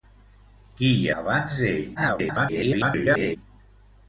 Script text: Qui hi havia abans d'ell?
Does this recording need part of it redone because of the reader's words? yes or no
yes